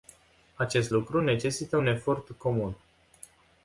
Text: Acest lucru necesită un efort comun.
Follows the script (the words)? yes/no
yes